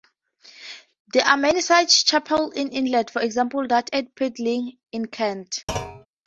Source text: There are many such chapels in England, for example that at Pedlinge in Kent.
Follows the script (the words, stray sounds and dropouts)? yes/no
no